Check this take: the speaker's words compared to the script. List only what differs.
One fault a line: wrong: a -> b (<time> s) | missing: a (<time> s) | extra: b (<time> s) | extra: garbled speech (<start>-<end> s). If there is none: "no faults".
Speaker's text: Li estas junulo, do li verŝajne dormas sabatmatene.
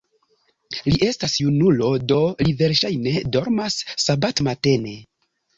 no faults